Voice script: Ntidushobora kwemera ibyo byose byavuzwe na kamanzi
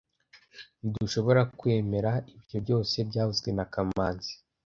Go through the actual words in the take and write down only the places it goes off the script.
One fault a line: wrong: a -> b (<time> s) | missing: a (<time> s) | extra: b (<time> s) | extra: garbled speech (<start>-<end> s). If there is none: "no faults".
no faults